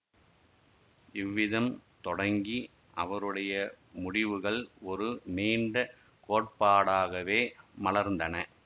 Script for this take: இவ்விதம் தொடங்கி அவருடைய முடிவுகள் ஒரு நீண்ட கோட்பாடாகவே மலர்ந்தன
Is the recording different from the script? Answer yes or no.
no